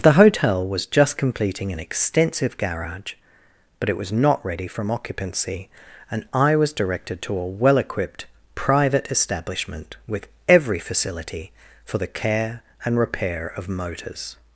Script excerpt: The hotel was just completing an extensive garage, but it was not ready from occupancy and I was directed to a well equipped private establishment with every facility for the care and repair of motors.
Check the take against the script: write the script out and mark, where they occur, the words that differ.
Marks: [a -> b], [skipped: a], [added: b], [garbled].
The hotel was just completing an extensive garage, but it was not ready from occupancy and I was directed to a well equipped private establishment with every facility for the care and repair of motors.